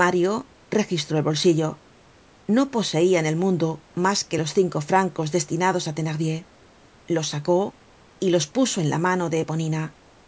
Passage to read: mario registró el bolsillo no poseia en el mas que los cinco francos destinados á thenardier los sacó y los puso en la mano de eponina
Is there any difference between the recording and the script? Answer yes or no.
yes